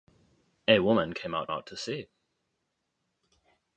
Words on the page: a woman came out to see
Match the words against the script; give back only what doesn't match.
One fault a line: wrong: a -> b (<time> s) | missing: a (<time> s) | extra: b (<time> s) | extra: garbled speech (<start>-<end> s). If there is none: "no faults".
extra: out (1.5 s)